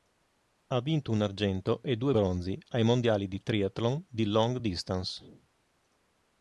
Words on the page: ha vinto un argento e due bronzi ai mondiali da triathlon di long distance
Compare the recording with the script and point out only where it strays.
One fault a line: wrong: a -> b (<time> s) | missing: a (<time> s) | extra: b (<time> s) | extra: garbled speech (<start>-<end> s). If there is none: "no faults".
wrong: da -> di (3.3 s)